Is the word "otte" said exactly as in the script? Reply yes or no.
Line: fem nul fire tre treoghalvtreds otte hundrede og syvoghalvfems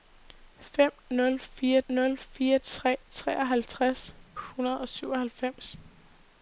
no